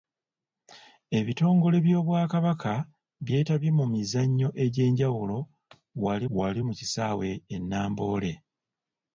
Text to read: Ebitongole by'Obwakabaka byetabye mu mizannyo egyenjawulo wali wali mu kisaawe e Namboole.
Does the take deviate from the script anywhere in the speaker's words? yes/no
no